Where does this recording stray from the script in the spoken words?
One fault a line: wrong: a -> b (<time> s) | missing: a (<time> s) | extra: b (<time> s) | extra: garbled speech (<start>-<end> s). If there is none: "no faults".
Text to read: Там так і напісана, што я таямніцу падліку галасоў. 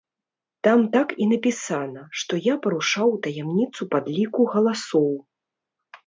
extra: парушаў (2.7 s)